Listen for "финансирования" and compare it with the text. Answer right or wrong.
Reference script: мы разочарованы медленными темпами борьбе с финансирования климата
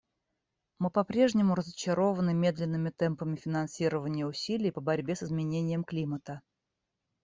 wrong